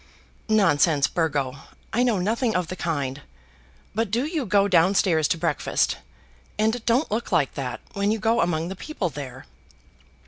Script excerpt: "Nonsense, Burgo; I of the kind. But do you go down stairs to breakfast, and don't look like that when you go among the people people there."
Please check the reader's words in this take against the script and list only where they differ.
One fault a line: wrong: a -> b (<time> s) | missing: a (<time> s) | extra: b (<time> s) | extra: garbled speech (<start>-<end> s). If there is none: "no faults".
extra: know nothing (2.0 s)
missing: people (9.1 s)